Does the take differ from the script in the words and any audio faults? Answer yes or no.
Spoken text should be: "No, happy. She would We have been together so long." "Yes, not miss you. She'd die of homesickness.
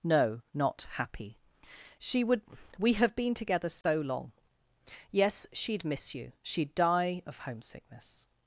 yes